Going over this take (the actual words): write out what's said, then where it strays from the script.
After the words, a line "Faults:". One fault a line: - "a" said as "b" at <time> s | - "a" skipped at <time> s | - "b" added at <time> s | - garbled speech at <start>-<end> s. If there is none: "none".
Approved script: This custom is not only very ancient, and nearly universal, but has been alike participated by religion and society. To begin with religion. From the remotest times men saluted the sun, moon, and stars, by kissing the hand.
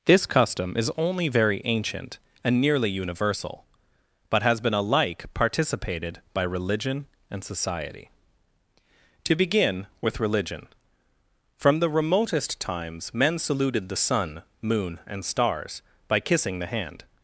This custom is only very ancient, and nearly universal, but has been alike participated by religion and society. To begin with religion. From the remotest times men saluted the sun, moon, and stars, by kissing the hand.
Faults:
- "not" skipped at 0.9 s